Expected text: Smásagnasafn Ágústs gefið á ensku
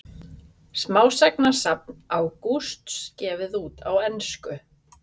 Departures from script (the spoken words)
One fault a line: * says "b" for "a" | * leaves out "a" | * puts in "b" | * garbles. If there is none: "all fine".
* puts in "út"